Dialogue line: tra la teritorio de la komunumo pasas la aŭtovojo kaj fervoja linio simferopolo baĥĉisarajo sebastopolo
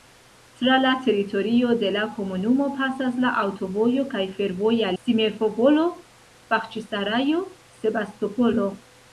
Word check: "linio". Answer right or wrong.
wrong